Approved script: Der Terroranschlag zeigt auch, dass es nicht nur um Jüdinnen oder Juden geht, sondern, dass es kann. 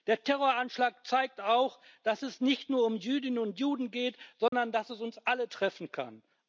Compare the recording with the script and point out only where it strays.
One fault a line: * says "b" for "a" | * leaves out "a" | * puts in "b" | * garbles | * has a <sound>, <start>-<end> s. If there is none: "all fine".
* says "und" for "oder"
* has a dropout, 4.5-4.5 s
* puts in "uns alle treffen"